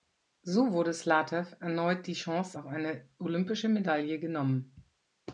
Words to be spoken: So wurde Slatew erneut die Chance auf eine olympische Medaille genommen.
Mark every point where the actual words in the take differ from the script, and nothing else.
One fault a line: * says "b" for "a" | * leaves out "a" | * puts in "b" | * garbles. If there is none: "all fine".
all fine